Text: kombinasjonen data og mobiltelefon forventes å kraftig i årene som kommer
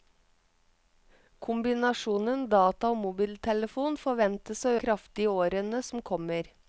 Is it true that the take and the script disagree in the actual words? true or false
false